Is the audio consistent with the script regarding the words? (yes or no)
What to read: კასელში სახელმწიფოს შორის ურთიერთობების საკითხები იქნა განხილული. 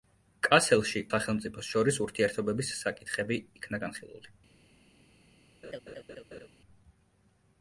yes